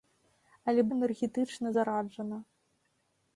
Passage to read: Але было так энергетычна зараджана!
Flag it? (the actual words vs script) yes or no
yes